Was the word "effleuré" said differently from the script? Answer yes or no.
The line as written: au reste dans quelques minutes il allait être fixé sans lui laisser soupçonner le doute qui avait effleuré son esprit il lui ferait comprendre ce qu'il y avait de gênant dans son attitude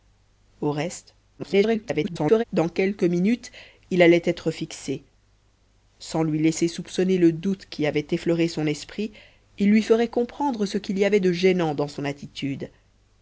no